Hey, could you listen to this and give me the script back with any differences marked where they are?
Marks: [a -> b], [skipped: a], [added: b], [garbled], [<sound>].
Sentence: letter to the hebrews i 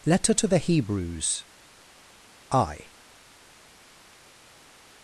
letter to the hebrews i